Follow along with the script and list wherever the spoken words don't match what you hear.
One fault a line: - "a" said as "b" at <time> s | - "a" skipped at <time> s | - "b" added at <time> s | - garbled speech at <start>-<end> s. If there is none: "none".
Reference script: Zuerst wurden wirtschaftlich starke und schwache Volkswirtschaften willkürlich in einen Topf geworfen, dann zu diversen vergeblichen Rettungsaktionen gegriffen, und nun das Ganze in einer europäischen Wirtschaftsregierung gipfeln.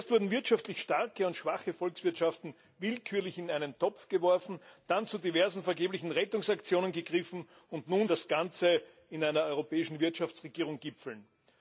none